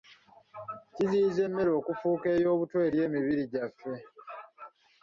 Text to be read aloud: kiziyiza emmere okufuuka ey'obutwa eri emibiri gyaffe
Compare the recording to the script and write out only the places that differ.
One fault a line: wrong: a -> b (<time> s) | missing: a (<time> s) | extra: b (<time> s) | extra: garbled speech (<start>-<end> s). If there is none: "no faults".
no faults